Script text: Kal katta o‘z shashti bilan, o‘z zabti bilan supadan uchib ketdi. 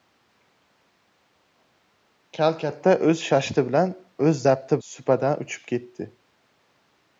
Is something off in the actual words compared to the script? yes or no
yes